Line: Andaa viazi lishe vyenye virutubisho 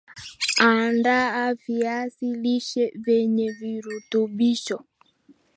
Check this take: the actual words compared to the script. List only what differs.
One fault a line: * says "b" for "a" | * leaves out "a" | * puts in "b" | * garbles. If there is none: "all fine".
all fine